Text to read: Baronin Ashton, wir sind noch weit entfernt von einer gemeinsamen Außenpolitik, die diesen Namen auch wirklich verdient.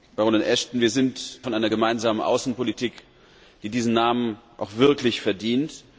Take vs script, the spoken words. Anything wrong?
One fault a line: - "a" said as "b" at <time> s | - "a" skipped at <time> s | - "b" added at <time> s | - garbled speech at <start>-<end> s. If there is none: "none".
- "noch weit entfernt" skipped at 1.4 s